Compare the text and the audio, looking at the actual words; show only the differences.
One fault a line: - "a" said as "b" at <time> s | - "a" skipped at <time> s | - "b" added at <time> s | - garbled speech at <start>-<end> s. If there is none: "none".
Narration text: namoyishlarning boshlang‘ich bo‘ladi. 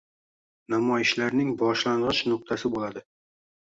- "nuqtasi" added at 2.3 s